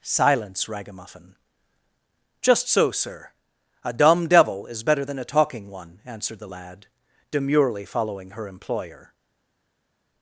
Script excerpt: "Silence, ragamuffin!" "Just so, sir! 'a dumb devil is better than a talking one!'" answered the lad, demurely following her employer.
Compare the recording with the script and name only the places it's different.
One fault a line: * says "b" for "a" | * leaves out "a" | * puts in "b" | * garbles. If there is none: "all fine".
all fine